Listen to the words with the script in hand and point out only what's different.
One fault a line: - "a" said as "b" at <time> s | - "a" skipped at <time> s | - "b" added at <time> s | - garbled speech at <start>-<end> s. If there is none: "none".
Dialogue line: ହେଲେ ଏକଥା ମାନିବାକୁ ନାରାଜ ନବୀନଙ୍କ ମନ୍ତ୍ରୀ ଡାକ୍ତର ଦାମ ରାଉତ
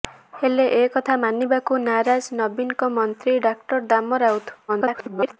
- garbled speech at 4.7-5.4 s